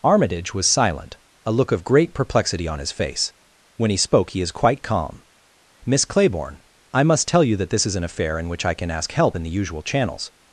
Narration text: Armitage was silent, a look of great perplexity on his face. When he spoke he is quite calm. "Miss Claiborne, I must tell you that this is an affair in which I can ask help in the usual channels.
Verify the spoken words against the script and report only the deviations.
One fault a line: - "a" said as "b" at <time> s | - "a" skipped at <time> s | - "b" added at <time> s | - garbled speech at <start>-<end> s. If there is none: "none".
none